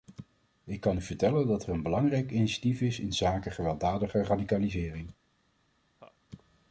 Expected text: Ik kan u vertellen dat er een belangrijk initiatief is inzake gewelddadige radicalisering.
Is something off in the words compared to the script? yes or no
no